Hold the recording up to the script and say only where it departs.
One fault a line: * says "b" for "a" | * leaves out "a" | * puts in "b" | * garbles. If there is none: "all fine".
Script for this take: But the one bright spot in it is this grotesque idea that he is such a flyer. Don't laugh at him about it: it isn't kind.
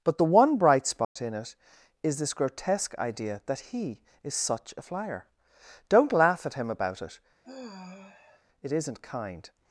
all fine